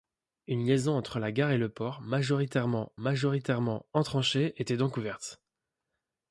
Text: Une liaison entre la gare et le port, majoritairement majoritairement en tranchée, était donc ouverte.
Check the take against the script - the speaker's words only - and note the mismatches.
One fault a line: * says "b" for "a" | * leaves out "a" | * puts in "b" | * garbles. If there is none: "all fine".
all fine